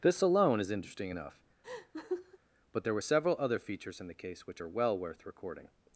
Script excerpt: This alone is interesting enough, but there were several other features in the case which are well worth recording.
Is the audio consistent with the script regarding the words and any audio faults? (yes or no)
no